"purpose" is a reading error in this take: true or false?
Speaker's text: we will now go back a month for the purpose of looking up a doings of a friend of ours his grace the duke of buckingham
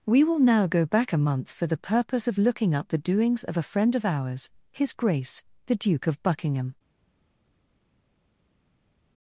false